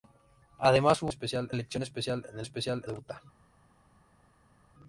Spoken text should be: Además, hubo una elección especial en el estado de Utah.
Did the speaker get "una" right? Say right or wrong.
wrong